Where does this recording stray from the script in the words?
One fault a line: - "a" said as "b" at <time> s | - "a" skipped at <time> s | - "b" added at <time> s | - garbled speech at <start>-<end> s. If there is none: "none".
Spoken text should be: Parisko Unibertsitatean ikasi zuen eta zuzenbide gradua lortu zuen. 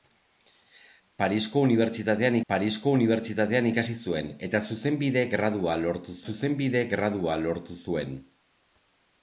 - "parisko Unibertsitatean" added at 2.5 s
- "zuzenbide gradua lortu" added at 6.3 s